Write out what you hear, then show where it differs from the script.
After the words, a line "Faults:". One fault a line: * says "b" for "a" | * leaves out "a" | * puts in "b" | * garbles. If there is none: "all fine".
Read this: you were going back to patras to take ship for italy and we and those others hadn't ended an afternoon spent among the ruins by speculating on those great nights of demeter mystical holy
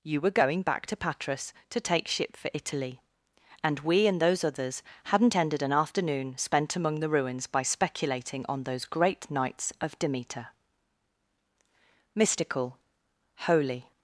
you were going back to patras to take ship for italy and we and those others hadn't ended an afternoon spent among the ruins by speculating on those great nights of demeter mystical holy
Faults:
all fine